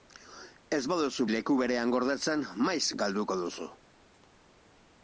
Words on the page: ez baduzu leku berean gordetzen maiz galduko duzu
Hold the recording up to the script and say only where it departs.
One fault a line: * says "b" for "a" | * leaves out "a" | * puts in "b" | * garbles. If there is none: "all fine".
all fine